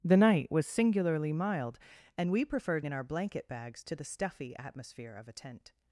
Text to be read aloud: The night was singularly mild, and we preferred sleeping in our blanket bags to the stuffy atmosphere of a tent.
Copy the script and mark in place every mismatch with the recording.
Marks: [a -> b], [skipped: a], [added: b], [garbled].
The night was singularly mild, and we preferred [skipped: sleeping] in our blanket bags to the stuffy atmosphere of a tent.